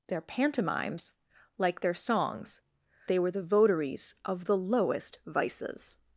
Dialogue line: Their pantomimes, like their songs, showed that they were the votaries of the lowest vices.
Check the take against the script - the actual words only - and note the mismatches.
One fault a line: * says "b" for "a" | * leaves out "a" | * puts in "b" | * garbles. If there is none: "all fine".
* leaves out "showed that"